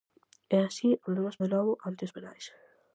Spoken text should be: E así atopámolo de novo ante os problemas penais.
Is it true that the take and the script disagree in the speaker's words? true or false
true